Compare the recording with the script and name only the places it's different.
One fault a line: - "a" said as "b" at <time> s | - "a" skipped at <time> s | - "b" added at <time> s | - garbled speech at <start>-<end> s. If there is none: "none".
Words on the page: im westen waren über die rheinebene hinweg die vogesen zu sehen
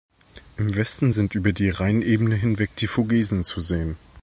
- "waren" said as "sind" at 1.1 s